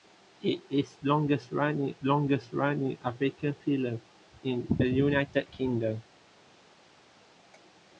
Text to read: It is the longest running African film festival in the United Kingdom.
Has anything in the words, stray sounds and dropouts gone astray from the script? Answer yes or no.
yes